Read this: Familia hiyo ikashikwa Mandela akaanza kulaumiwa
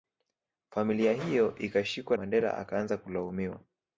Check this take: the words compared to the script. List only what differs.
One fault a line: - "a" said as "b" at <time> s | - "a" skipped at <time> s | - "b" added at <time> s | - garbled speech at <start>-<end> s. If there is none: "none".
none